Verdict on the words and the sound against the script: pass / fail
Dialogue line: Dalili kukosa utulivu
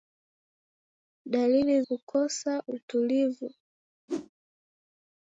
fail